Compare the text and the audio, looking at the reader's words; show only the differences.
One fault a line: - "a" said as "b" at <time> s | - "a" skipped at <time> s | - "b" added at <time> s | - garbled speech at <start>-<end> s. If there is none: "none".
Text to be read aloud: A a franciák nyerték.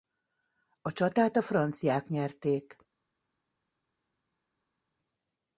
- "csatát" added at 0.9 s